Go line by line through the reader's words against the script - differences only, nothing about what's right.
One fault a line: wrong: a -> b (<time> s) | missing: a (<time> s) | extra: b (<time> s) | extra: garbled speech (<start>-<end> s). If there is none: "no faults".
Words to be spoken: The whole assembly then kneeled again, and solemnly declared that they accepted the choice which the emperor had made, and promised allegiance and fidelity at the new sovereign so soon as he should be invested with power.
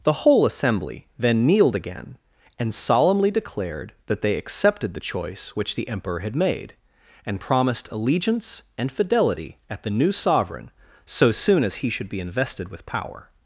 no faults